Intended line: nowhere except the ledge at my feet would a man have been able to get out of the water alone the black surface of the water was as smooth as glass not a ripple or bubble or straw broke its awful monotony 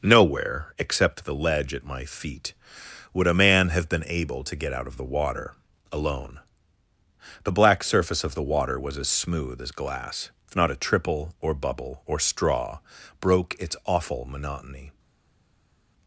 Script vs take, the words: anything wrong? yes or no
yes